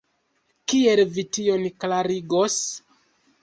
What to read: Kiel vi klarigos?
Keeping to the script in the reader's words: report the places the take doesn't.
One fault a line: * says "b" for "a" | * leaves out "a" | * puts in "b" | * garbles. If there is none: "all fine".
* puts in "tion"